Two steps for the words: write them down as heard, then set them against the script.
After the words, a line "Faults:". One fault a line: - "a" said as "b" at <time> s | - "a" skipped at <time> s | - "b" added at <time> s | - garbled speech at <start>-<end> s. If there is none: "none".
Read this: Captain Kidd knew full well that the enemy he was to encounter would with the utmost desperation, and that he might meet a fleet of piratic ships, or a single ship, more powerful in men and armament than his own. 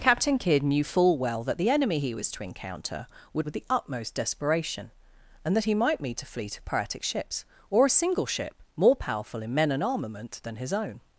Captain Kidd knew full well that the enemy he was to encounter would with the utmost desperation, and that he might meet a fleet of piratic ships, or a single ship, more powerful in men and armament than his own.
Faults:
none